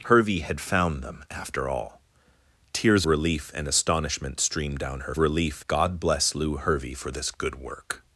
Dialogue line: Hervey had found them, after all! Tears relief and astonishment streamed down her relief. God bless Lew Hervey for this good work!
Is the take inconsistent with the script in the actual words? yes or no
no